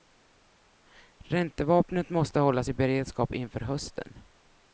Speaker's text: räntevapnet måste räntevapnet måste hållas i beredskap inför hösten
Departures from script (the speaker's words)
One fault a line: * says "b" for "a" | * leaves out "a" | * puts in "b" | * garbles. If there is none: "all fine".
* leaves out "räntevapnet måste"